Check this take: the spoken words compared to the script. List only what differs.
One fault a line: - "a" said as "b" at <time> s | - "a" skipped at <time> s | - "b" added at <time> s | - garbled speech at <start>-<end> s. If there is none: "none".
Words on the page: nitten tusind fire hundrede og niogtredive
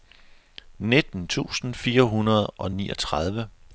none